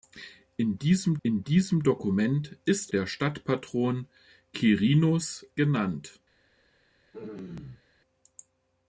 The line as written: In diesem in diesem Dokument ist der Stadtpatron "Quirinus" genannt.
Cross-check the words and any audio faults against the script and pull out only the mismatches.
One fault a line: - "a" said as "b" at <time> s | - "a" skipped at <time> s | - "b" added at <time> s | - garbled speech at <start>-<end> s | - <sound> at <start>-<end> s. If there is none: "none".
- throat clearing at 7.1-7.8 s